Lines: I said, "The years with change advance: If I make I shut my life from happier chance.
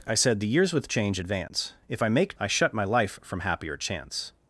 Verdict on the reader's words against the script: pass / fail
pass